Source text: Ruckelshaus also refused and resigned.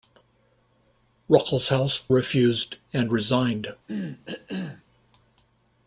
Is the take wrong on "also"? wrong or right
wrong